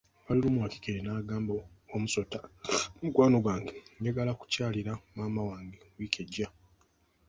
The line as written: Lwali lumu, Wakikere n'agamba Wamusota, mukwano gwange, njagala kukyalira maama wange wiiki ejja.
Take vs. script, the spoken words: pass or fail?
pass